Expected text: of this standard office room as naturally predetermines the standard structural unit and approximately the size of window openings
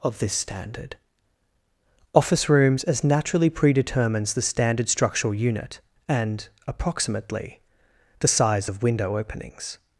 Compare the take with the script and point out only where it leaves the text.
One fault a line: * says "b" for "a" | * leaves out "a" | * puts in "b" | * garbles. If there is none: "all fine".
* says "rooms" for "room"